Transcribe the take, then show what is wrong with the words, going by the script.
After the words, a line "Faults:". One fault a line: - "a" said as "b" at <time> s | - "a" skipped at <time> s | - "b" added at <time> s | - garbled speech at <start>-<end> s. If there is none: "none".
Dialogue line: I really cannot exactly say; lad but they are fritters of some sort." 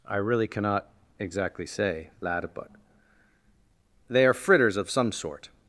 I really cannot exactly say; lad but they are fritters of some sort."
Faults:
none